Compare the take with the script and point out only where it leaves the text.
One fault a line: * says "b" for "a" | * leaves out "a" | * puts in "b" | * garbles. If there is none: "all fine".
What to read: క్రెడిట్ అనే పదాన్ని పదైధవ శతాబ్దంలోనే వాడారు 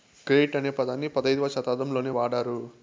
all fine